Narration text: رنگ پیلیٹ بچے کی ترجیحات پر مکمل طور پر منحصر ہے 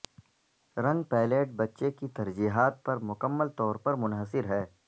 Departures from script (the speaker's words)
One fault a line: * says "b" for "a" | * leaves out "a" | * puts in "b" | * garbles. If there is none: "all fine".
all fine